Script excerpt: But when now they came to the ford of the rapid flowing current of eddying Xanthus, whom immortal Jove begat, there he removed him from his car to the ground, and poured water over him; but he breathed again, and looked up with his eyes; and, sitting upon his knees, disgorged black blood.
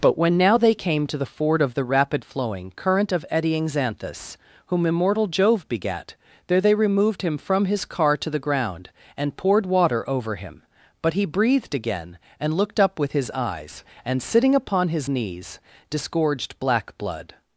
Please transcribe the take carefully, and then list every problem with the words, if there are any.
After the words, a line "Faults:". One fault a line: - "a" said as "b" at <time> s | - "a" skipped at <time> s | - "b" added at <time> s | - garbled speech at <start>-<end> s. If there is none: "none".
But when now they came to the ford of the rapid flowing current of eddying Xanthus, whom immortal Jove begat, there they removed him from his car to the ground, and poured water over him; but he breathed again, and looked up with his eyes; and, sitting upon his knees, disgorged black blood.
Faults:
- "he" said as "they" at 6.6 s